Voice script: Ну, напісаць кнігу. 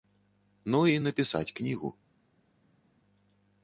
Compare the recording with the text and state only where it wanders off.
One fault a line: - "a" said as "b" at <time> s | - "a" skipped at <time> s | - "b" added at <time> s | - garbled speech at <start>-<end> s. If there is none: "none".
- "і" added at 0.9 s